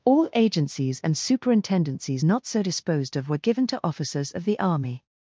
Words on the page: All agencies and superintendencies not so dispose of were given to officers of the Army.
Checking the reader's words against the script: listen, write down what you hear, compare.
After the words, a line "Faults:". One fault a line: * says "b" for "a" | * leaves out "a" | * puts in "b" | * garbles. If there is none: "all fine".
All agencies and superintendencies not so disposed of were given to officers of the Army.
Faults:
* says "disposed" for "dispose"